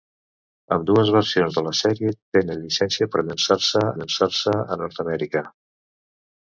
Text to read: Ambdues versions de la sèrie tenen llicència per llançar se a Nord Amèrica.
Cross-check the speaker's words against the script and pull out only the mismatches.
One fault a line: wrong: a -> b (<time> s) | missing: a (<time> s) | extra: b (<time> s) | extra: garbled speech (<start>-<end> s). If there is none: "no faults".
extra: llançar se (4.0 s)